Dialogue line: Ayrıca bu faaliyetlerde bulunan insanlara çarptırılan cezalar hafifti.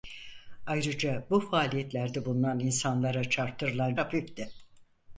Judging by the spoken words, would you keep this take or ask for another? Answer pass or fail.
fail